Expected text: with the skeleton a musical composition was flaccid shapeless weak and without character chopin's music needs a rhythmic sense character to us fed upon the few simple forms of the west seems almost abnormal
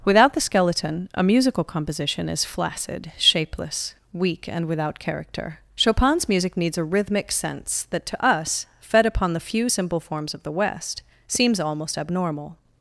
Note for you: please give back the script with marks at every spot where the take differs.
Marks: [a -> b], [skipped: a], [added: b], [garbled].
[with -> without] the skeleton a musical composition [was -> is] flaccid shapeless weak and without character chopin's music needs a rhythmic sense [character -> that] to us fed upon the few simple forms of the west seems almost abnormal